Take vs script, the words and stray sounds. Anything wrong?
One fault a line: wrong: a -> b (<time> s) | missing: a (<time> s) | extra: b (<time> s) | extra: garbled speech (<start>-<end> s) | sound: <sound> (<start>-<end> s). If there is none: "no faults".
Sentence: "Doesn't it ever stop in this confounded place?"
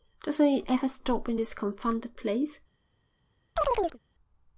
sound: chirp (3.6-4.0 s)